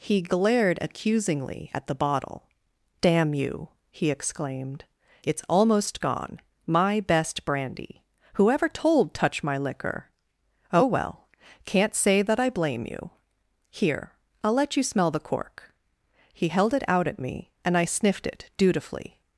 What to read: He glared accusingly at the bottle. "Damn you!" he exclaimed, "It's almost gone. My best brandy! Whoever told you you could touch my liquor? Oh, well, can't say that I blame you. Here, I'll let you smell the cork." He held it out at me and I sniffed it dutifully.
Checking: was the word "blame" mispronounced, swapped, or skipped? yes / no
no